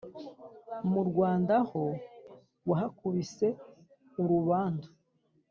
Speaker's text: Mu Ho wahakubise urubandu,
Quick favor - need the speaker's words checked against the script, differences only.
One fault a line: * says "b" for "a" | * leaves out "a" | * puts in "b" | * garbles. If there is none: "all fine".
* puts in "Rwanda"